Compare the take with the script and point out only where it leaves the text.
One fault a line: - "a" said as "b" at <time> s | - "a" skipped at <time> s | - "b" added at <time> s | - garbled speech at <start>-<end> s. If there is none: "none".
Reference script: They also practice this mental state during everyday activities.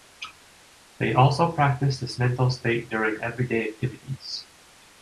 none